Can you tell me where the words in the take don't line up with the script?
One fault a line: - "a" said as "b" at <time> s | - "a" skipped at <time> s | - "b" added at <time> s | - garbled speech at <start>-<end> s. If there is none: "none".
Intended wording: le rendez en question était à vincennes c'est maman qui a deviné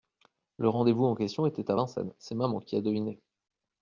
- "vous" added at 0.9 s